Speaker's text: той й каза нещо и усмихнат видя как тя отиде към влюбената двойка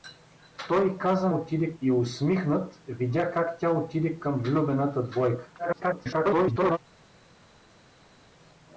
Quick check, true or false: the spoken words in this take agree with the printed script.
false